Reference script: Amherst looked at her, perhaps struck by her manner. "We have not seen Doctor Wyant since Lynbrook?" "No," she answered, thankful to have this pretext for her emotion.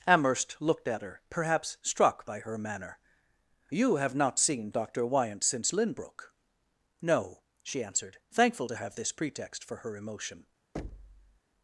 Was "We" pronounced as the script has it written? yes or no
no